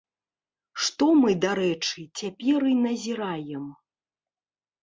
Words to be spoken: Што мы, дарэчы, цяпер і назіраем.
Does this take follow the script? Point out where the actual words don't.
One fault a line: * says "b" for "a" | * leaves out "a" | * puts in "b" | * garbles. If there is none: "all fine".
all fine